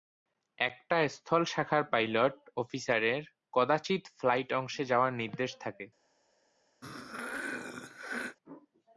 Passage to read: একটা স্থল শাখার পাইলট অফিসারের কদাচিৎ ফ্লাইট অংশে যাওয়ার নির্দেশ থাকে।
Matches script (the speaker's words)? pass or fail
pass